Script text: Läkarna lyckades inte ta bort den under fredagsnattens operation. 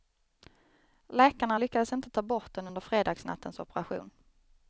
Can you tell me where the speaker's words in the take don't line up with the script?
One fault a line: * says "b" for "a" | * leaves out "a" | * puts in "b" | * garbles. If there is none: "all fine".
all fine